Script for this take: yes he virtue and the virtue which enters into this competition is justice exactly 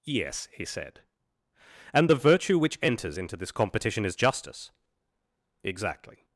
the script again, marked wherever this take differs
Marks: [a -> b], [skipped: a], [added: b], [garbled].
yes he [virtue -> said] and the virtue which enters into this competition is justice exactly